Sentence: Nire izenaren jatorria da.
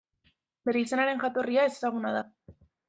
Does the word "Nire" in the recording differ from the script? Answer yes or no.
yes